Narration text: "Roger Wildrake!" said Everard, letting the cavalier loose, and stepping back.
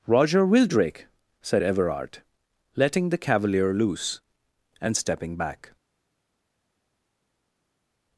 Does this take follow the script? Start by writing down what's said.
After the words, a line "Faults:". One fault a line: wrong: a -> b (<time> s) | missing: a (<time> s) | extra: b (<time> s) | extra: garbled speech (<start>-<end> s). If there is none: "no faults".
"Roger Wildrake!" said Everard, letting the cavalier loose, and stepping back.
Faults:
no faults